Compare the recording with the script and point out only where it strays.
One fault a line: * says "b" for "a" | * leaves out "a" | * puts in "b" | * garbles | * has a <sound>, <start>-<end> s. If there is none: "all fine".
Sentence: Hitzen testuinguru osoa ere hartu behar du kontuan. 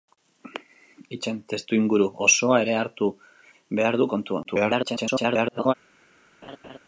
* garbles
* has a laugh, 6.4-6.8 s